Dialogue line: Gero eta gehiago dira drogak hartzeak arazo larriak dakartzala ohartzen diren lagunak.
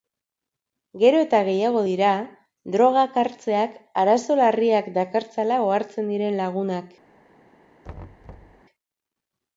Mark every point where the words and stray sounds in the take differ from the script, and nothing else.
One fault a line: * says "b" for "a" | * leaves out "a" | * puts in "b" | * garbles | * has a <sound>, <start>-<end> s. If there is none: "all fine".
* has a thud, 7.8-8.6 s